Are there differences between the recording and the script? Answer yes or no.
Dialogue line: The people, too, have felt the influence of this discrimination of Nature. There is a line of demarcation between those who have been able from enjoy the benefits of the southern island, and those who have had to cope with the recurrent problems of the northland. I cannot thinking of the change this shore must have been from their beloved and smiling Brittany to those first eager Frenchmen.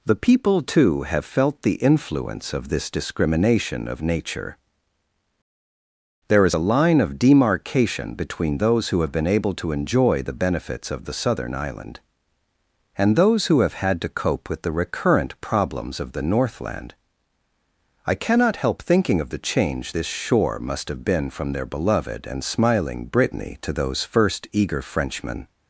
yes